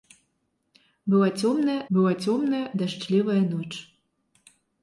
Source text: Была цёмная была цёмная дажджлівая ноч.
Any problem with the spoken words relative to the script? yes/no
no